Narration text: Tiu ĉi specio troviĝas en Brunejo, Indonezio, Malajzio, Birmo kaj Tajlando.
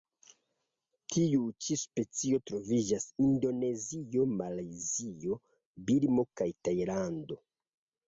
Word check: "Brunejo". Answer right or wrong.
wrong